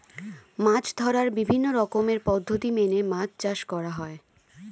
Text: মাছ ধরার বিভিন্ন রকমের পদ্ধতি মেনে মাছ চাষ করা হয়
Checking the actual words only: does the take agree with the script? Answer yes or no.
yes